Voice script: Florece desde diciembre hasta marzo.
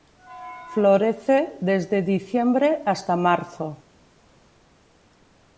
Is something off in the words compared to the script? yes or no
no